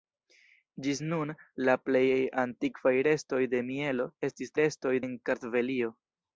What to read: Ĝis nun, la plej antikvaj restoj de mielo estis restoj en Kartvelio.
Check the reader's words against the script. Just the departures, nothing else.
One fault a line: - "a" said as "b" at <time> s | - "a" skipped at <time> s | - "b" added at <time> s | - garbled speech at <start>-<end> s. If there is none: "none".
none